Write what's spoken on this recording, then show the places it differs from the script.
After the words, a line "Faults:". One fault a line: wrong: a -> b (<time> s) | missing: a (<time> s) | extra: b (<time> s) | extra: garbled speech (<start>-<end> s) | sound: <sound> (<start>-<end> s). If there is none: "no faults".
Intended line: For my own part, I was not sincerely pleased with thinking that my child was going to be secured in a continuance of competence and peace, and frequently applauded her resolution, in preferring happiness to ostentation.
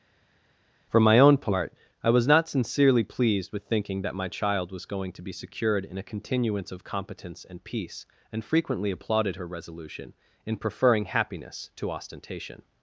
For my own part, I was not sincerely pleased with thinking that my child was going to be secured in a continuance of competence and peace, and frequently applauded her resolution, in preferring happiness to ostentation.
Faults:
no faults